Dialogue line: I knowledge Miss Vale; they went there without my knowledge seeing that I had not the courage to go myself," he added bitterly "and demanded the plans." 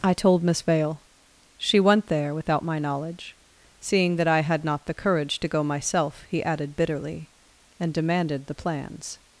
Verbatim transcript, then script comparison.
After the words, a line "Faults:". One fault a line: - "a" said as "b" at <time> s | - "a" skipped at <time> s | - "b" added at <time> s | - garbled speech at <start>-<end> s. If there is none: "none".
I told Miss Vale; she went there without my knowledge seeing that I had not the courage to go myself," he added bitterly "and demanded the plans."
Faults:
- "knowledge" said as "told" at 0.1 s
- "they" said as "she" at 1.6 s